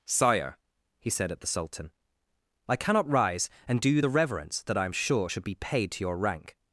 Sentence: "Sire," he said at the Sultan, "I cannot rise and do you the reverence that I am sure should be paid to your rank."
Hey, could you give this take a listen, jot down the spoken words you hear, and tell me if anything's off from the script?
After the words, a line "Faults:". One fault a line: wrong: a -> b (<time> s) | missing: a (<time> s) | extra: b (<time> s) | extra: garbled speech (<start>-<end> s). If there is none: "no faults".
"Sire," he said at the Sultan, "I cannot rise and do you the reverence that I am sure should be paid to your rank."
Faults:
no faults